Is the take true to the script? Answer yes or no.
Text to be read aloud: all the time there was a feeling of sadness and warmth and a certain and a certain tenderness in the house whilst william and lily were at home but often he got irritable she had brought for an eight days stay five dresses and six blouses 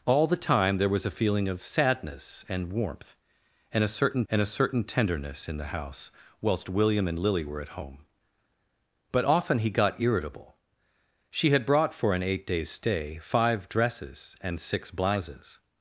yes